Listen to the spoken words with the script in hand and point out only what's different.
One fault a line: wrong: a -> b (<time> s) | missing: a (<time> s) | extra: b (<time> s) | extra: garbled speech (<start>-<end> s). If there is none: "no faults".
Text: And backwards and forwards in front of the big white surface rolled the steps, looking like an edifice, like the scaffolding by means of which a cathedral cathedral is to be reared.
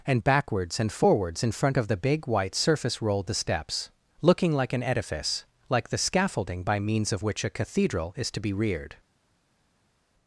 missing: cathedral (8.1 s)